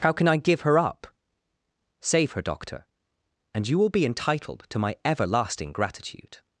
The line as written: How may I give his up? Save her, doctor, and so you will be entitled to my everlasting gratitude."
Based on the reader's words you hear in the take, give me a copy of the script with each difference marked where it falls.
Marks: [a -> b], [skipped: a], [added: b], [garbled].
How [may -> can] I give [his -> her] up? Save her, doctor, and [skipped: so] you will be entitled to my everlasting gratitude."